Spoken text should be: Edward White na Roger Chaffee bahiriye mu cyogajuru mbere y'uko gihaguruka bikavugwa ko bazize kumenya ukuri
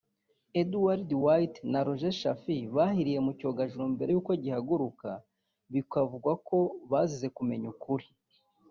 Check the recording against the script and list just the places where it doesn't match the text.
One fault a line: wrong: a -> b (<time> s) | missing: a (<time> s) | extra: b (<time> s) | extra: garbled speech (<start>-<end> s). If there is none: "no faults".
no faults